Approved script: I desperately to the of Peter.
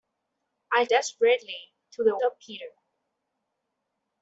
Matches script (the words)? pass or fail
pass